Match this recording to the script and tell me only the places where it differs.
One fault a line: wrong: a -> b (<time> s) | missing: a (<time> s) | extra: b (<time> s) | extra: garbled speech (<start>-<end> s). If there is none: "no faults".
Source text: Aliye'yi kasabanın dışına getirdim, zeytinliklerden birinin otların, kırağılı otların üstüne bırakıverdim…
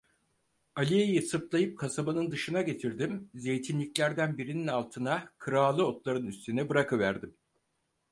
extra: sırtlayıp (1.2 s)
wrong: otların -> altına (4.7 s)